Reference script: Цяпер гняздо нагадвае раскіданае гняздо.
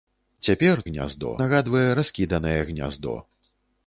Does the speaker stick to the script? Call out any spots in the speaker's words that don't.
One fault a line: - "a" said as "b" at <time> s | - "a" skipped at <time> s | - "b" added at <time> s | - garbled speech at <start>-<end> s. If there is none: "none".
none